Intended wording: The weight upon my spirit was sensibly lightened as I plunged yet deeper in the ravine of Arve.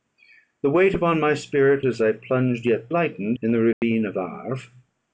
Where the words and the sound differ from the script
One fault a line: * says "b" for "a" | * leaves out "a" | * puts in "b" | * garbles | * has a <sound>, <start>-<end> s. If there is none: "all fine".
* leaves out "was sensibly lightened"
* says "lightened" for "deeper"
* has a dropout, 3.7-3.8 s